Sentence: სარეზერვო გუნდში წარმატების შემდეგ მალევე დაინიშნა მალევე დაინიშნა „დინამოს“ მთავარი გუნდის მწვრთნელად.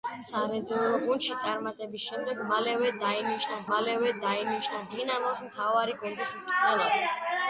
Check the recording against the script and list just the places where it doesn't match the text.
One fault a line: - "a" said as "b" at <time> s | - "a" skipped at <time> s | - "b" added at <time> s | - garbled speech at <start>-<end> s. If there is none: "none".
none